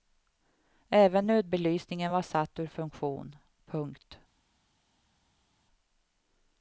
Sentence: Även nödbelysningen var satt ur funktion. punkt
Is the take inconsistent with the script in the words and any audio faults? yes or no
no